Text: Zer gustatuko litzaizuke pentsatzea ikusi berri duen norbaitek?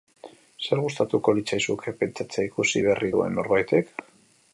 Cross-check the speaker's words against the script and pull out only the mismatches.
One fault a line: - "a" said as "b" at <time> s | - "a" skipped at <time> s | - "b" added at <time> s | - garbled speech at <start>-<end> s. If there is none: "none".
none